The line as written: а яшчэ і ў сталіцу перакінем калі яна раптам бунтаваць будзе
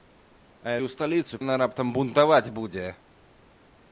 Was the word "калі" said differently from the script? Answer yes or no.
yes